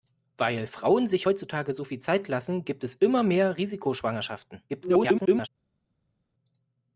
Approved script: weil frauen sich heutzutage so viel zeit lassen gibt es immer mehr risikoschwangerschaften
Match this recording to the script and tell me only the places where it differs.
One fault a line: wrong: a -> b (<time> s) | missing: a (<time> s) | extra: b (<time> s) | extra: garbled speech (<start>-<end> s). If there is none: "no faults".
extra: garbled speech (4.7-5.5 s)